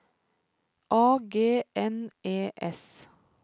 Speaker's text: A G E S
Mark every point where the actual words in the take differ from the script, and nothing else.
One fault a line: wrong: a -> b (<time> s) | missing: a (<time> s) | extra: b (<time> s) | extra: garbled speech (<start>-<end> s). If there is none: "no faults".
extra: N (1.7 s)